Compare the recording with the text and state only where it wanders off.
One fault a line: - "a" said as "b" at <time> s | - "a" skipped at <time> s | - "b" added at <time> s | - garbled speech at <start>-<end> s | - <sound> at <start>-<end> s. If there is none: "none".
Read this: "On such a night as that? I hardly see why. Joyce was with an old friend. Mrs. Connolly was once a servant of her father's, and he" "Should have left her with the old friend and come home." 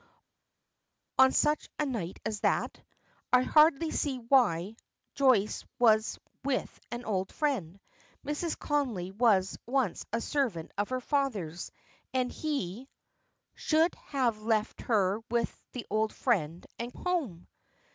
- "come" skipped at 16.9 s